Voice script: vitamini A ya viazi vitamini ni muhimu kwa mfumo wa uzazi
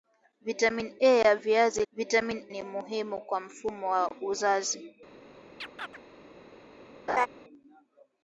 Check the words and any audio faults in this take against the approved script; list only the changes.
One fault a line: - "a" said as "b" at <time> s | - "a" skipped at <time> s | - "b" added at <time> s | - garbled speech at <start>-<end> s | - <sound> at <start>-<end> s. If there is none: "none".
- chirp at 5.6-6.0 s
- laugh at 7.1-7.3 s